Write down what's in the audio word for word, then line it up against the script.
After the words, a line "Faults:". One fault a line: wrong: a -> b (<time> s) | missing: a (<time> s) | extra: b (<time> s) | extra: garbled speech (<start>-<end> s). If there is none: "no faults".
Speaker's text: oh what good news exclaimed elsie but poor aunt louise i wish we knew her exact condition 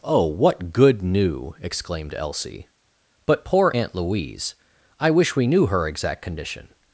oh what good new exclaimed elsie but poor aunt louise i wish we knew her exact condition
Faults:
wrong: news -> new (1.0 s)